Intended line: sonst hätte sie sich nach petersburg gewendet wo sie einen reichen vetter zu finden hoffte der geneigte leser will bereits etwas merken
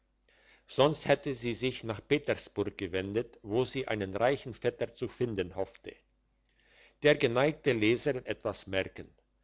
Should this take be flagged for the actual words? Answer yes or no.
yes